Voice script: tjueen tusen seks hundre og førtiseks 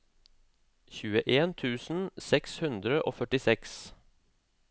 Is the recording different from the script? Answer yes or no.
no